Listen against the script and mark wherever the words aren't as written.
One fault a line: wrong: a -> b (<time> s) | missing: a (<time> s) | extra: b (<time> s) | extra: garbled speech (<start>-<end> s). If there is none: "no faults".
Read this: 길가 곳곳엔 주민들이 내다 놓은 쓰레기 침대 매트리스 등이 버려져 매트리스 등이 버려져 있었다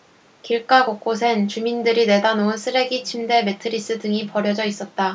missing: 매트리스 등이 버려져 (4.6 s)